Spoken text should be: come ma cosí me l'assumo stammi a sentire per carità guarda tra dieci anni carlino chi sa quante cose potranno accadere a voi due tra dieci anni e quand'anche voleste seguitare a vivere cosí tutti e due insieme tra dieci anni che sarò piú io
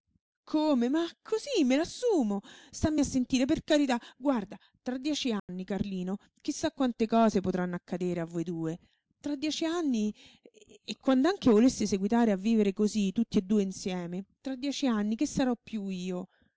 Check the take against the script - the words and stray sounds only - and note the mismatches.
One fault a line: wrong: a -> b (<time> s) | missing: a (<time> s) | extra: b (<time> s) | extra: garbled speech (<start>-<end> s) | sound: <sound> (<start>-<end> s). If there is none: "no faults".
sound: dropout (5.4-5.5 s)